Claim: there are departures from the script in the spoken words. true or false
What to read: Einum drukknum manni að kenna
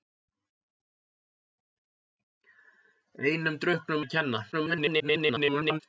true